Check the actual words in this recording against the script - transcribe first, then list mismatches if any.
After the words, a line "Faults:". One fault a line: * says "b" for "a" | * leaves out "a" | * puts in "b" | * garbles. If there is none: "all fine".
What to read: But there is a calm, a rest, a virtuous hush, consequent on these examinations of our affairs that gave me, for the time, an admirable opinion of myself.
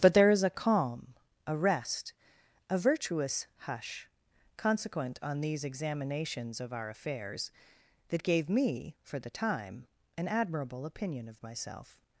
But there is a calm, a rest, a virtuous hush, consequent on these examinations of our affairs that gave me, for the time, an admirable opinion of myself.
Faults:
all fine